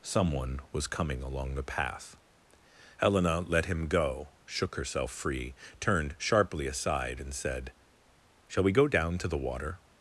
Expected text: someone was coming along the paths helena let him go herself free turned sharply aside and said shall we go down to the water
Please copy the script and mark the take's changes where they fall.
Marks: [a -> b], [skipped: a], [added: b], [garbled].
someone was coming along the [paths -> path] helena let him go [added: shook] herself free turned sharply aside and said shall we go down to the water